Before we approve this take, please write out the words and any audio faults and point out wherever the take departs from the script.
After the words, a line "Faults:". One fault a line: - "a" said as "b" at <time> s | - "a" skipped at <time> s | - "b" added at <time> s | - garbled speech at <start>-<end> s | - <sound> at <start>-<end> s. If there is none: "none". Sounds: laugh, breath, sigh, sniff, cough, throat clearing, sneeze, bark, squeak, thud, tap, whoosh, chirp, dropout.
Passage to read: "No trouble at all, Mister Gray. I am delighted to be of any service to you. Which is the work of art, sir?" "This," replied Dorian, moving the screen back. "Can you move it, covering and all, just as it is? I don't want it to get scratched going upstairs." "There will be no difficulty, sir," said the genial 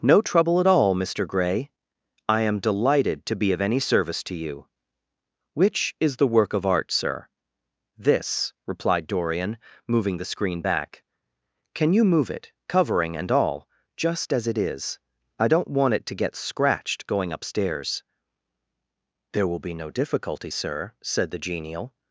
"No trouble at all, Mister Gray. I am delighted to be of any service to you. Which is the work of art, sir?" "This," replied Dorian, moving the screen back. "Can you move it, covering and all, just as it is? I don't want it to get scratched going upstairs." "There will be no difficulty, sir," said the genial
Faults:
none